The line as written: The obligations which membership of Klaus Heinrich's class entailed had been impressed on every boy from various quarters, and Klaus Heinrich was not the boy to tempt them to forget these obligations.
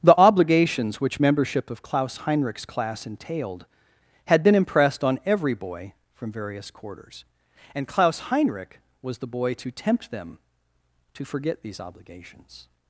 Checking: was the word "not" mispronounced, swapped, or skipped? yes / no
yes